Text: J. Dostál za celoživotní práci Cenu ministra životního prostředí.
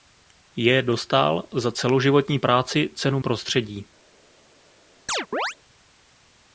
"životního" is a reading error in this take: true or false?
true